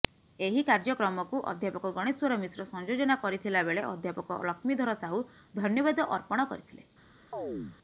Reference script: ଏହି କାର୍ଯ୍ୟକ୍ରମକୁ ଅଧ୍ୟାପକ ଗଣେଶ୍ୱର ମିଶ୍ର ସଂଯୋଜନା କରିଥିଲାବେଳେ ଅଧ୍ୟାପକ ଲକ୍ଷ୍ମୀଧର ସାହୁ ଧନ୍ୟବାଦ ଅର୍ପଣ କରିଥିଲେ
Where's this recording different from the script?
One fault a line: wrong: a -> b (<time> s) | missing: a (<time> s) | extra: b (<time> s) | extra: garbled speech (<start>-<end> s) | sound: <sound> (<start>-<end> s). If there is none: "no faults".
sound: chirp (7.3-7.8 s)